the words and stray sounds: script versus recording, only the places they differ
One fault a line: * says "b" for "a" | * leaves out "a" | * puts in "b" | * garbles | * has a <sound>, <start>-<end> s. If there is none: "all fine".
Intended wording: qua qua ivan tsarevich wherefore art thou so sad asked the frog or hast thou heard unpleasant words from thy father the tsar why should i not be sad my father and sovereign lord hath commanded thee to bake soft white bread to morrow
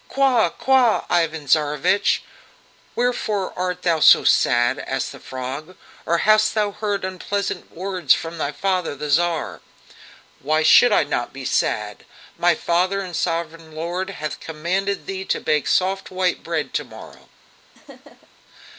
* has a laugh, 17.7-18.3 s